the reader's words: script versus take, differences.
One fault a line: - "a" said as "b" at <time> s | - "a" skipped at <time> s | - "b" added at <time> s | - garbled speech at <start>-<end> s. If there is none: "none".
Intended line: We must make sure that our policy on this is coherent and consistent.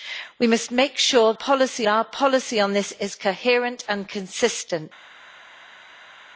- "that" said as "policy" at 1.3 s